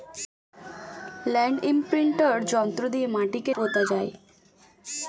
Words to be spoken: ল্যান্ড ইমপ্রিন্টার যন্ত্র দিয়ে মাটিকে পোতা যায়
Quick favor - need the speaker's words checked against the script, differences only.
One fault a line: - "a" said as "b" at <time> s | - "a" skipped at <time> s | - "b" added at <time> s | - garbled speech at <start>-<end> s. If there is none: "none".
none